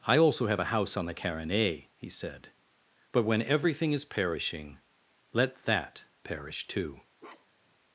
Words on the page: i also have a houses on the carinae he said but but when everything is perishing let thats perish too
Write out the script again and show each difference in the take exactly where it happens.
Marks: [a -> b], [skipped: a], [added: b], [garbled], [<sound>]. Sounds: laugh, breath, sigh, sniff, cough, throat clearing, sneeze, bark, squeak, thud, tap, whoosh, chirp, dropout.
i also have a [houses -> house] on the carinae he said but [skipped: but] when everything is perishing let [thats -> that] perish too [bark]